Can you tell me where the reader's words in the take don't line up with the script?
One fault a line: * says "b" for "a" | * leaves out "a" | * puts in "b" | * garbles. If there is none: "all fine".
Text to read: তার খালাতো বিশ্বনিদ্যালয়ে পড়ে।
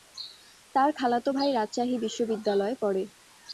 * puts in "ভাই রাজশাহী"